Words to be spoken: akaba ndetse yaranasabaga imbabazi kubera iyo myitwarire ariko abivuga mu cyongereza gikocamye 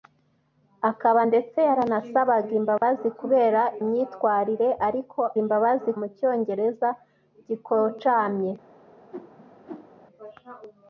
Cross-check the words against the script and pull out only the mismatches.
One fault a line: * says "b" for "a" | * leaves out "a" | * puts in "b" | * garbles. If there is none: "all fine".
* leaves out "iyo"
* says "imbabazi" for "abivuga"